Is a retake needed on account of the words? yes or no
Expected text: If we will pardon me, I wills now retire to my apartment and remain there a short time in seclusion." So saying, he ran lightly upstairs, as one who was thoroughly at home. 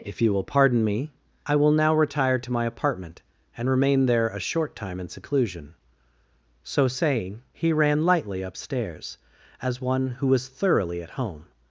yes